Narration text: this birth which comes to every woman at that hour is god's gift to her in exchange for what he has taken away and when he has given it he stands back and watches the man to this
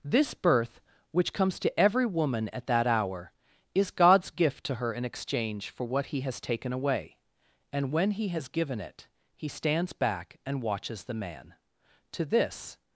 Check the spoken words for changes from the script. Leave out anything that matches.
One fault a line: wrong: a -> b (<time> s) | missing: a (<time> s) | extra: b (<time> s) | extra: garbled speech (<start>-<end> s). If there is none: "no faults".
no faults